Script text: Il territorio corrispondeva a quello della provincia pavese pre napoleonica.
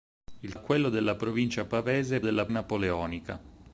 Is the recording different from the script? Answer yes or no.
yes